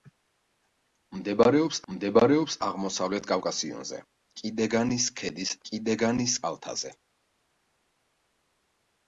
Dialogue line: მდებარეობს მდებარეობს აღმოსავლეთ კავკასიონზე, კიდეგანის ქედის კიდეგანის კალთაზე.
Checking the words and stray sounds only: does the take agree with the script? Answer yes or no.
yes